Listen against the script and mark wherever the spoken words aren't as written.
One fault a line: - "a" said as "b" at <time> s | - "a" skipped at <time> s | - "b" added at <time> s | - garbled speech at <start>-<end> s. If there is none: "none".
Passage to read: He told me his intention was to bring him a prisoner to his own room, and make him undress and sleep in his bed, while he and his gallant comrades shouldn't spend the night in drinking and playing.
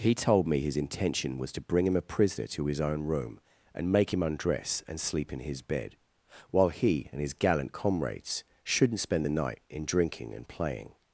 none